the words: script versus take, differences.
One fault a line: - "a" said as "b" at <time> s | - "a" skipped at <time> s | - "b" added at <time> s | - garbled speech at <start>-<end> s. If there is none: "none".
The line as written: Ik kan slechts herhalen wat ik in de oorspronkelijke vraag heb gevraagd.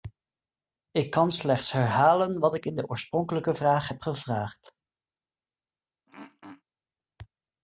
none